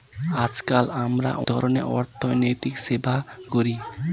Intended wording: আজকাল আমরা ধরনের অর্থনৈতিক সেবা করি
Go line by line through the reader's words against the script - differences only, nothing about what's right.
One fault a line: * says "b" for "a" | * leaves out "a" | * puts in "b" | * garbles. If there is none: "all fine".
all fine